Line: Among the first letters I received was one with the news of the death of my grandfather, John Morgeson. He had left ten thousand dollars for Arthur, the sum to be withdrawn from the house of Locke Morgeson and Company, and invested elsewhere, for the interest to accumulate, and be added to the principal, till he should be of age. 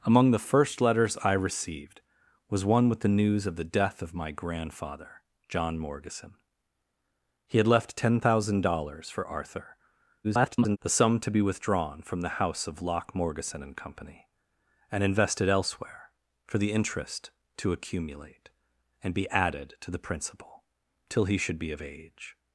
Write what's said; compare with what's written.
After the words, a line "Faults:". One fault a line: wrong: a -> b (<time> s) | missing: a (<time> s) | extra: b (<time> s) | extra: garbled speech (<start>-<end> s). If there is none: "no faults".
Among the first letters I received was one with the news of the death of my grandfather, John Morgeson. He had left ten thousand dollars for Arthur, [garbled] the sum to be withdrawn from the house of Locke Morgeson and Company, and invested elsewhere, for the interest to accumulate, and be added to the principal, till he should be of age.
Faults:
extra: garbled speech (10.2-10.8 s)